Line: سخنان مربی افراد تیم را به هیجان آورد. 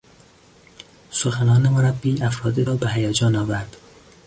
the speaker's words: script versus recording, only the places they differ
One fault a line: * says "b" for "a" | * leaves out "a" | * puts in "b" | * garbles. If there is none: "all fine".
* leaves out "تیم"